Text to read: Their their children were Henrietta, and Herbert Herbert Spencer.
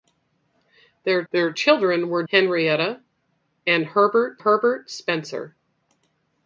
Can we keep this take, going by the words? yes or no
yes